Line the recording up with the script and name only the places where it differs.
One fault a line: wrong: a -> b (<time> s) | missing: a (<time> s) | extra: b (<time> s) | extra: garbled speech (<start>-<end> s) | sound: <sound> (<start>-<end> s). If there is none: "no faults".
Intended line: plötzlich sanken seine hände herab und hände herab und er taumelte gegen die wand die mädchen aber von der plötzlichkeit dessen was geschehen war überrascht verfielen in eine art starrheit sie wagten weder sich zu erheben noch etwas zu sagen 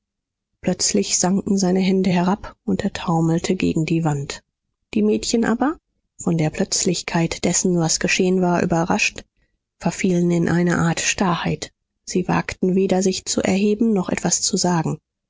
missing: hände herab und (2.8 s)